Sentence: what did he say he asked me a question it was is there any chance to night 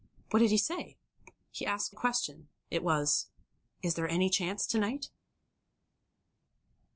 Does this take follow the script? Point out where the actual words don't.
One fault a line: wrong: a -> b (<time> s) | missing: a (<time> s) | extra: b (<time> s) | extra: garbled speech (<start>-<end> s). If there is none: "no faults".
missing: me (1.9 s)